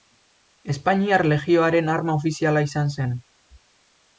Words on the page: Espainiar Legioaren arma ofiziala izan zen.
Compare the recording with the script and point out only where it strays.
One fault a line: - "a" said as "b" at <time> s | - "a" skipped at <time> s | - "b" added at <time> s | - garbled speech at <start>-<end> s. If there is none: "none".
none